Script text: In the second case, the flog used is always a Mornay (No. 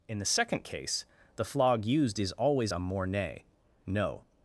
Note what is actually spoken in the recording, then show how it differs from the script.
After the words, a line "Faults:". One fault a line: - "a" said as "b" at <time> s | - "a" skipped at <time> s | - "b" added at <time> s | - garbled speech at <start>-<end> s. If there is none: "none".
In the second case, the flog used is always a Mornay (No.
Faults:
none